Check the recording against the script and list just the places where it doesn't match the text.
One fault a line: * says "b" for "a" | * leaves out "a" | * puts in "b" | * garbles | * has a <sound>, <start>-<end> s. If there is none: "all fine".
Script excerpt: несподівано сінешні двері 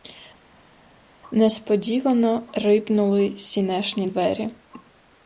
* puts in "рипнули"